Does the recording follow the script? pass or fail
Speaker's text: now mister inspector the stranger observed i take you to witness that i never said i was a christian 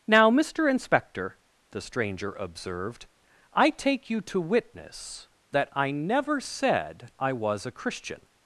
pass